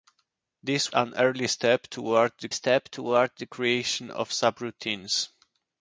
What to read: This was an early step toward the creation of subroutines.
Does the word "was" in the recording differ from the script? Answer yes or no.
yes